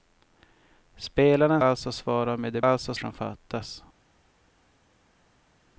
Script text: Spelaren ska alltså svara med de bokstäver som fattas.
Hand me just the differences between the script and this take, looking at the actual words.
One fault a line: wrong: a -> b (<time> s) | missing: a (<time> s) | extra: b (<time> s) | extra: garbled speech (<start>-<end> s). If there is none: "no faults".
missing: ska (1.6 s)
wrong: bokstäver -> alltså (2.6 s)